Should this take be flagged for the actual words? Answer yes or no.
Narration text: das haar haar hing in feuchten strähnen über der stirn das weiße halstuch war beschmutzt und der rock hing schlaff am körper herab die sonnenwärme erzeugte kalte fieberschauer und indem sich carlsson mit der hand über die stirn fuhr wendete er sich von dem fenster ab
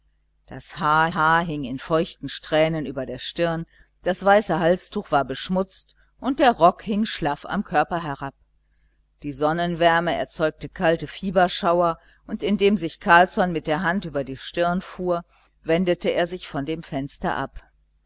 no